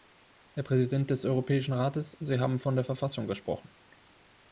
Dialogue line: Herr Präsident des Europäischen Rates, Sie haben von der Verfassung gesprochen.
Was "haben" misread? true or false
false